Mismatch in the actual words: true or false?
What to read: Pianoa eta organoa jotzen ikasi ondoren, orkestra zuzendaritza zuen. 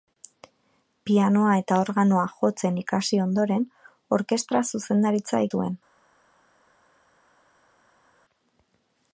false